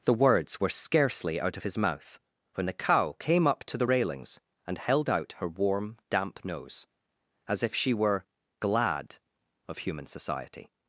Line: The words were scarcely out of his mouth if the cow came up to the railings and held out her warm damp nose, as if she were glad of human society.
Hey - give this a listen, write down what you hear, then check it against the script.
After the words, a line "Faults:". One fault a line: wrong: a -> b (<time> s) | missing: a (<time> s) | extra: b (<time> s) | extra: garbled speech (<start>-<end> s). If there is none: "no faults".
The words were scarcely out of his mouth when the cow came up to the railings and held out her warm damp nose, as if she were glad of human society.
Faults:
wrong: if -> when (2.5 s)